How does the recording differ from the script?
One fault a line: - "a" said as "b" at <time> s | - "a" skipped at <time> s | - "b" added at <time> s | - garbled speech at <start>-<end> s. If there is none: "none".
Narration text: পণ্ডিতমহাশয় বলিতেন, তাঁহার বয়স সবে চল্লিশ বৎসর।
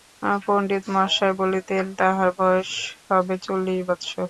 none